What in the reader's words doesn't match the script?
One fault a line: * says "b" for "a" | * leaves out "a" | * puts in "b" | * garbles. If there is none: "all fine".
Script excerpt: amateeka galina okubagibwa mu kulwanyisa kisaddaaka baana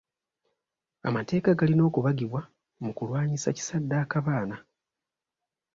all fine